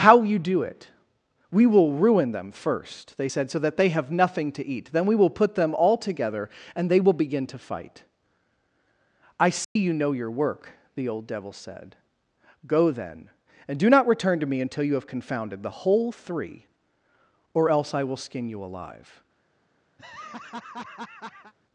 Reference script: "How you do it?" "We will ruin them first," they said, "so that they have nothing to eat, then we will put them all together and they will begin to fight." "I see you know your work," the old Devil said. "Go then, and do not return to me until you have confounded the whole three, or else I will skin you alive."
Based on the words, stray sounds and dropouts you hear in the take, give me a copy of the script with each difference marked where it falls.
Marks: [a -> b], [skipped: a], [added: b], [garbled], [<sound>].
"How you do it?" "We will ruin them first," they said, "so that they have nothing to eat, then we will put them all together and they will begin to fight." "I see [dropout] you know your work," the old Devil said. "Go then, and do not return to me until you have confounded the whole three, or else I will skin you alive." [laugh]